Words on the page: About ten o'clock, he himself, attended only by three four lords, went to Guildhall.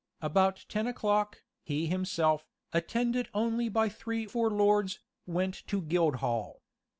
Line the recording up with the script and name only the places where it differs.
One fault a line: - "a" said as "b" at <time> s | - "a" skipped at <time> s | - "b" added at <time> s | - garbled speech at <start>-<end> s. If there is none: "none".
none